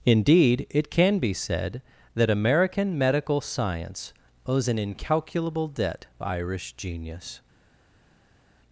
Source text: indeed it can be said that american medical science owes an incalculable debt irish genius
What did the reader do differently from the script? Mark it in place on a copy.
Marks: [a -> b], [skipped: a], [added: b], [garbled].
indeed it can be said that american medical science owes an incalculable debt irish genius